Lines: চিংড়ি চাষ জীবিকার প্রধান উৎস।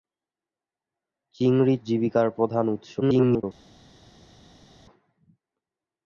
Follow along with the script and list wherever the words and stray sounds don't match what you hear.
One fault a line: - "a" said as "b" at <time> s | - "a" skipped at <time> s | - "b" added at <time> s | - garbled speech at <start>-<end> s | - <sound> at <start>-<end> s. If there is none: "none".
- "চাষ" skipped at 1.8 s
- garbled speech at 3.0-3.4 s